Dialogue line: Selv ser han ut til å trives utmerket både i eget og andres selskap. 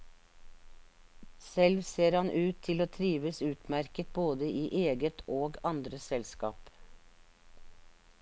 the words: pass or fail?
pass